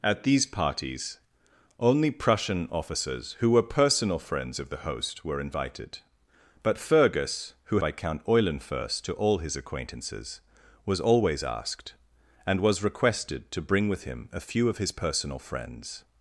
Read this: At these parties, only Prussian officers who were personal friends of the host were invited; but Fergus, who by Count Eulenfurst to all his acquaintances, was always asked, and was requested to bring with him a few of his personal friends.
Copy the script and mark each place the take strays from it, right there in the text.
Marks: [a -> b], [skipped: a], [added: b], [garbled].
At these parties, only Prussian officers who were personal friends of the host were invited; but Fergus, who by Count Eulenfurst to all his acquaintances, was always asked, and was requested to bring with him a few of his personal friends.